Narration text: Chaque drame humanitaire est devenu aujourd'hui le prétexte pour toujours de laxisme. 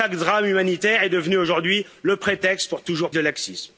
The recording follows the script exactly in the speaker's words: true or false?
true